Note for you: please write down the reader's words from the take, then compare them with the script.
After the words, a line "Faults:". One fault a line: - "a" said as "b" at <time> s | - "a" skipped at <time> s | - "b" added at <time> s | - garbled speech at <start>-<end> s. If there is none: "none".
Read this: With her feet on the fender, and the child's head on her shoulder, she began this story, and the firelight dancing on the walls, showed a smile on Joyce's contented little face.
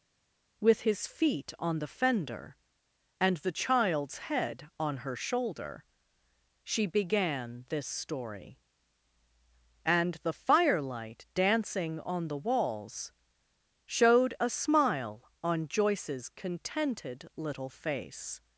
With his feet on the fender, and the child's head on her shoulder, she began this story, and the firelight dancing on the walls, showed a smile on Joyce's contented little face.
Faults:
- "her" said as "his" at 0.8 s